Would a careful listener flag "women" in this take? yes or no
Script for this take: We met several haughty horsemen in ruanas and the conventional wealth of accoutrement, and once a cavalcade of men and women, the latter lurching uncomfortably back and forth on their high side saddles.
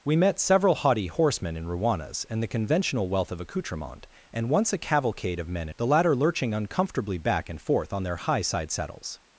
yes